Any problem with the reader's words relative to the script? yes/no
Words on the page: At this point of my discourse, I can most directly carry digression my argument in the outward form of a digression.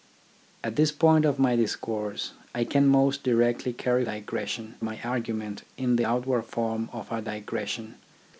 no